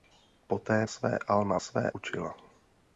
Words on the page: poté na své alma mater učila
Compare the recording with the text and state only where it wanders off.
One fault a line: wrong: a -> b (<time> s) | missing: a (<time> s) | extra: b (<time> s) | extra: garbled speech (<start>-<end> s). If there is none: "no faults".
missing: na (0.8 s)
wrong: mater -> své (1.6 s)